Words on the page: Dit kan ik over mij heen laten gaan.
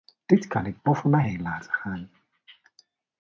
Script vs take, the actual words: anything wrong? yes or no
no